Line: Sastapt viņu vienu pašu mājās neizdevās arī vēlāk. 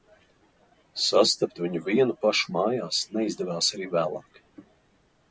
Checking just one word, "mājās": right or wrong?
right